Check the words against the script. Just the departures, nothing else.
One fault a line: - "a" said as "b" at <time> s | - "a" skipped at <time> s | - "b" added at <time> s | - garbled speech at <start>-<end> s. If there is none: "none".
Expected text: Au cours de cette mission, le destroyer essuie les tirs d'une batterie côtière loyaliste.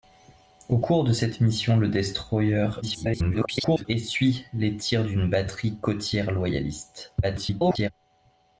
- garbled speech at 2.8-3.9 s
- garbled speech at 7.2-7.9 s